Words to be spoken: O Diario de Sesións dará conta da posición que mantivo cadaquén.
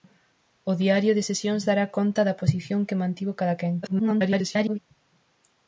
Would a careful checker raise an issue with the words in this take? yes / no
yes